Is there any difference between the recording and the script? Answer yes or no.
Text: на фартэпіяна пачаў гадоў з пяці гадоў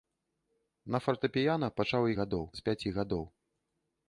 no